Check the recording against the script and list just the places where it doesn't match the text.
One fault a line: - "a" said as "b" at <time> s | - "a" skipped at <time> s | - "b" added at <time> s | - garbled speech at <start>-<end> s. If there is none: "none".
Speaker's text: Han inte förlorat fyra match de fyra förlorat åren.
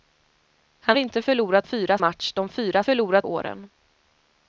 none